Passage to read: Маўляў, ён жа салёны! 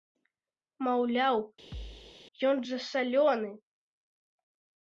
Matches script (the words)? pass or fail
pass